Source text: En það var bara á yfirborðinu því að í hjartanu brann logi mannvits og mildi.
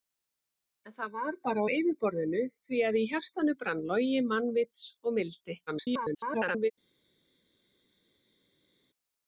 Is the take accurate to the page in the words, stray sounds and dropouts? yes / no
no